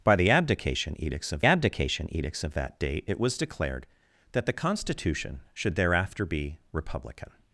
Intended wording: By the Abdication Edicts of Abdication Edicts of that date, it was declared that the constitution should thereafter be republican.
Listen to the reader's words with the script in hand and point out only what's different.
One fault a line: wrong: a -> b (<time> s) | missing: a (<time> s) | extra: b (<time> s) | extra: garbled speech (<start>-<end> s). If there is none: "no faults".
no faults